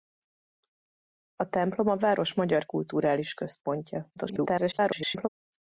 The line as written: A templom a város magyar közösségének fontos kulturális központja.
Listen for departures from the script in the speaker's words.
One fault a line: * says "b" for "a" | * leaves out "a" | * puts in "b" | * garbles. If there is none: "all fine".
* leaves out "közösségének fontos"
* garbles